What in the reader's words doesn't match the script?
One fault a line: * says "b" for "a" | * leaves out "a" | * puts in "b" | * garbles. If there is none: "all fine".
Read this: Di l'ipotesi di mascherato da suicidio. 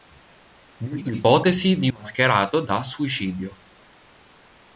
all fine